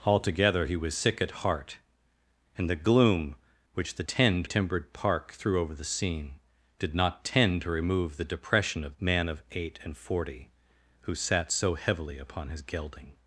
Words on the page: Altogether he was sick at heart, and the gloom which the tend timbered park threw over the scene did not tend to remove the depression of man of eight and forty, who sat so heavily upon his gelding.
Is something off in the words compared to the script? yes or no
no